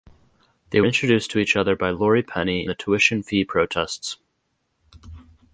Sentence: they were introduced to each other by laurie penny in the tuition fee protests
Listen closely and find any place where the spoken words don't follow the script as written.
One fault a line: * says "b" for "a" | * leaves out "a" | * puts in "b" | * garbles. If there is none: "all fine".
* leaves out "were"
* leaves out "in"